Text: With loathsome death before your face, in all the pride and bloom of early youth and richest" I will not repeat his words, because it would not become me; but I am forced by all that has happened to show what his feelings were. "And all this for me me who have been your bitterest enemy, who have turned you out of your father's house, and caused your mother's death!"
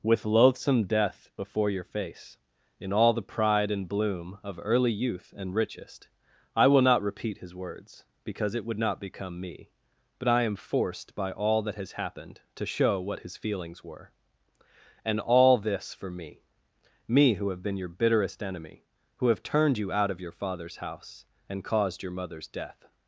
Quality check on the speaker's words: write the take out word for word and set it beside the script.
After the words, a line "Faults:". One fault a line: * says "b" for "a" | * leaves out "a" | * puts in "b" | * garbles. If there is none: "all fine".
With loathsome death before your face, in all the pride and bloom of early youth and richest" I will not repeat his words, because it would not become me; but I am forced by all that has happened to show what his feelings were. "And all this for me me who have been your bitterest enemy, who have turned you out of your father's house, and caused your mother's death!"
Faults:
all fine